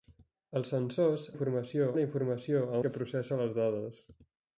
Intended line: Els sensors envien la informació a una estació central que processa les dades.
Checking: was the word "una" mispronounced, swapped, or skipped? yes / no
yes